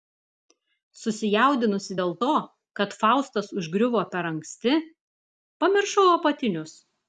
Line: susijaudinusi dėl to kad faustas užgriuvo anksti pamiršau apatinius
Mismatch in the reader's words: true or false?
true